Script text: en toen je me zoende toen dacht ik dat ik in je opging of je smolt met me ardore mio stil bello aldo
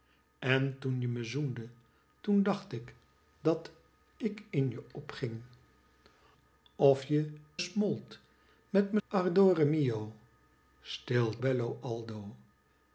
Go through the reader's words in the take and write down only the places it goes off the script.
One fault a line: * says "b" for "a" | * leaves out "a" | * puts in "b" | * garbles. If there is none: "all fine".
all fine